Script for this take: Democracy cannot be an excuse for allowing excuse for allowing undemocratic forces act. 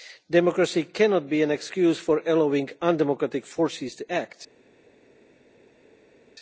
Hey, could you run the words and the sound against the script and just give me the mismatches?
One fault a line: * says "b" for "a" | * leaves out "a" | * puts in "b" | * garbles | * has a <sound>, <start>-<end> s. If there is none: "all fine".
* leaves out "excuse for allowing"
* puts in "to"